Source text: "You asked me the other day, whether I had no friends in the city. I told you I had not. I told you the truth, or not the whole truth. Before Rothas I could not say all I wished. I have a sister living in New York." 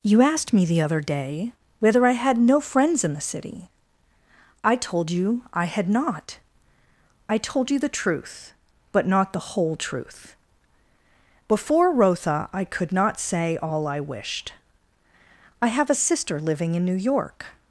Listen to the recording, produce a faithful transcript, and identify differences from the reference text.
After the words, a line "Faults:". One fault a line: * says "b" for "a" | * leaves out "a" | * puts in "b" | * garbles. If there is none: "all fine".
"You asked me the other day, whether I had no friends in the city. I told you I had not. I told you the truth, but not the whole truth. Before Rotha I could not say all I wished. I have a sister living in New York."
Faults:
* says "but" for "or"
* says "Rotha" for "Rothas"